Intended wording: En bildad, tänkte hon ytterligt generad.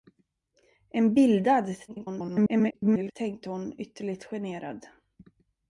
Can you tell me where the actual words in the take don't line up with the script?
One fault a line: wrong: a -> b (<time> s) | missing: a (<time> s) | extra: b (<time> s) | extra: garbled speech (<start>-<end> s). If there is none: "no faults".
extra: garbled speech (1.9-3.1 s)